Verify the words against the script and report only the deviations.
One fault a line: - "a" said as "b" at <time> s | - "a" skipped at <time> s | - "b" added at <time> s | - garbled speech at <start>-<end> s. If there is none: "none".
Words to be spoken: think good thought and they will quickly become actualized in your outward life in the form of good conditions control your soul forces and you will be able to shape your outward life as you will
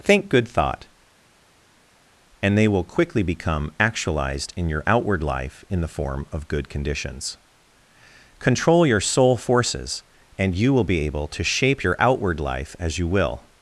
none